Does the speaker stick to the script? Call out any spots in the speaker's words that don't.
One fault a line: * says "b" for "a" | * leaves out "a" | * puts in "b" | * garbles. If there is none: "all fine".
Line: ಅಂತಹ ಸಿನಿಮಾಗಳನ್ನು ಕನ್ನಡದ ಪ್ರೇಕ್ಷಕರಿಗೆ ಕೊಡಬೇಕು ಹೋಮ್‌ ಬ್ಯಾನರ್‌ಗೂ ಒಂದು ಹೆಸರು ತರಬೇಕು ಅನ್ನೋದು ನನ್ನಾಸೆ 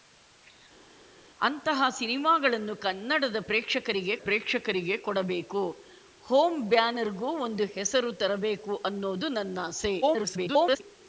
* puts in "ಪ್ರೇಕ್ಷಕರಿಗೆ"
* garbles